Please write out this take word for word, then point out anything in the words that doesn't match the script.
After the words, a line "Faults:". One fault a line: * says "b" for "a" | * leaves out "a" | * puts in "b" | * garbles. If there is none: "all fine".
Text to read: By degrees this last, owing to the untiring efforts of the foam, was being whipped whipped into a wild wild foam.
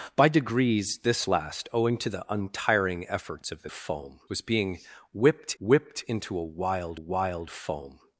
By degrees this last, owing to the untiring efforts of the foam, was being whipped whipped into a wild wild foam.
Faults:
all fine